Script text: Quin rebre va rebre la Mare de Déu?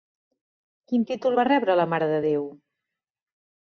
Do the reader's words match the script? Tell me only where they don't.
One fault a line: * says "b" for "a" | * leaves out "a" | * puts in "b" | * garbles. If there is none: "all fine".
* says "títol" for "rebre"